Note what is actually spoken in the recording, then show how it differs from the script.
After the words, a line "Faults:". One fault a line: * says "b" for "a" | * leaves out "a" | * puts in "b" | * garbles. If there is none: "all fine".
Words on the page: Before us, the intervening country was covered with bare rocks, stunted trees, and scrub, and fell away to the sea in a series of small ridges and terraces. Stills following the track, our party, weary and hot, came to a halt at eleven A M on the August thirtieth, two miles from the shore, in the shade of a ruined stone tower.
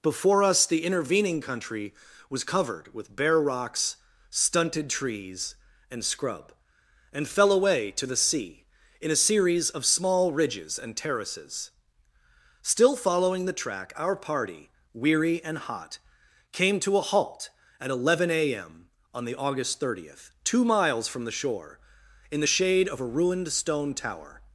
Before us, the intervening country was covered with bare rocks, stunted trees, and scrub, and fell away to the sea in a series of small ridges and terraces. Still following the track, our party, weary and hot, came to a halt at eleven A M on the August thirtieth, two miles from the shore, in the shade of a ruined stone tower.
Faults:
* says "Still" for "Stills"